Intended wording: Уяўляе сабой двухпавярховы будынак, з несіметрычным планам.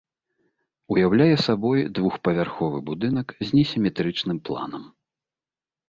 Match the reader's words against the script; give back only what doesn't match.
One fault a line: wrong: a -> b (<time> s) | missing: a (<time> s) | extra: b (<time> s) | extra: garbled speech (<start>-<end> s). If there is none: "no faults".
no faults